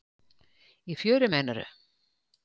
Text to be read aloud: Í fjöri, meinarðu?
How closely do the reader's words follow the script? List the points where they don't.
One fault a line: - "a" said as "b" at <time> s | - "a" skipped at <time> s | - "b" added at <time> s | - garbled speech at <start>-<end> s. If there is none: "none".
none